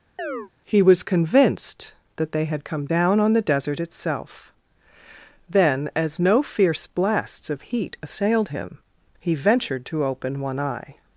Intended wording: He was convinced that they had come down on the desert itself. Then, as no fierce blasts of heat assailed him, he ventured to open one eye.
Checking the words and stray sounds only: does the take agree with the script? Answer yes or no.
no